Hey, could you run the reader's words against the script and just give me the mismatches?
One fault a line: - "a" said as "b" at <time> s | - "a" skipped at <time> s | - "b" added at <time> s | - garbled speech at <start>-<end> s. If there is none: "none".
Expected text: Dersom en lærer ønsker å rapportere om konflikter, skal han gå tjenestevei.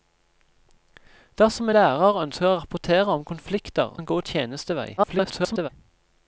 - "en" skipped at 1.7 s
- "skal" skipped at 3.9 s
- garbled speech at 5.0-5.7 s